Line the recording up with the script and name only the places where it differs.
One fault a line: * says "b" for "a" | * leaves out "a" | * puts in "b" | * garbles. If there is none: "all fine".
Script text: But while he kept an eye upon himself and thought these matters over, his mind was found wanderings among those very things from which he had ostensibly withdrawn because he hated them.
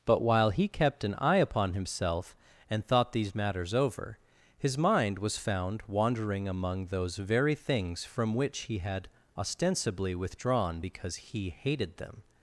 * says "wandering" for "wanderings"